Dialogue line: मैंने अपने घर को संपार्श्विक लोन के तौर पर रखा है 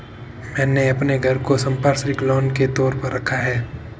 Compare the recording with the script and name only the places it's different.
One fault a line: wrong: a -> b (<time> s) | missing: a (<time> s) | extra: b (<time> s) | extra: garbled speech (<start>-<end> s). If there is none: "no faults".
no faults